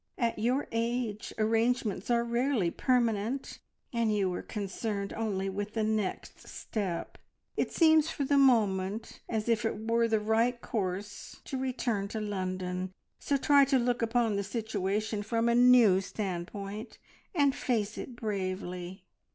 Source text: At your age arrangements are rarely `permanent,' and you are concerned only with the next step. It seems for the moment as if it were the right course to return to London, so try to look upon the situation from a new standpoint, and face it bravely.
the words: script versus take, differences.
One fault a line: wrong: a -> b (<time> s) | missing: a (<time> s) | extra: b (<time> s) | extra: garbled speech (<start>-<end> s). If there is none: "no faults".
no faults